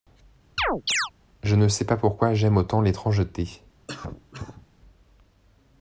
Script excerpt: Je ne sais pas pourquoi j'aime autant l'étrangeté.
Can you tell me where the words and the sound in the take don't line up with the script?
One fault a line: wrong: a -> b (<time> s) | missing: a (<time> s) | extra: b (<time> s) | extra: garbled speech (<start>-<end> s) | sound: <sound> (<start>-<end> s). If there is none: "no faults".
sound: chirp (0.6-1.1 s)
sound: cough (3.9-4.7 s)